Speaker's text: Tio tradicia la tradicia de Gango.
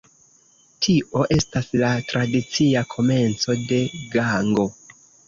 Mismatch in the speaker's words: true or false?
true